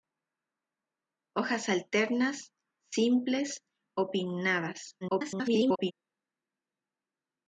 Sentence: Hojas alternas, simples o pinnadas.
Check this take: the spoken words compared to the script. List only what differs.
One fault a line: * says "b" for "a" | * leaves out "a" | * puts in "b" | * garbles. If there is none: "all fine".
* garbles